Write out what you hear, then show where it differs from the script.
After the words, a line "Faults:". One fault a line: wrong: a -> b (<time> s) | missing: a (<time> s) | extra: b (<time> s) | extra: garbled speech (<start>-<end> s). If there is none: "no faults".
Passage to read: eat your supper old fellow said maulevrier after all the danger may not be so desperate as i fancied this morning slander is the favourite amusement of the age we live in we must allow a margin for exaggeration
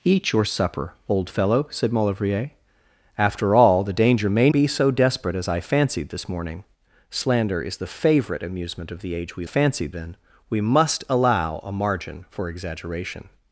eat your supper old fellow said maulevrier after all the danger may be so desperate as i fancied this morning slander is the favourite amusement of the age we fancied in we must allow a margin for exaggeration
Faults:
missing: not (4.5 s)
wrong: live -> fancied (9.4 s)